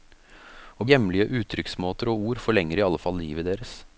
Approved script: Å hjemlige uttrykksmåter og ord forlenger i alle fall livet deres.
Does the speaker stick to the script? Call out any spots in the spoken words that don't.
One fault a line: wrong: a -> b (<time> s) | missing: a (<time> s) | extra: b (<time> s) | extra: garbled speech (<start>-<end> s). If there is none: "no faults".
no faults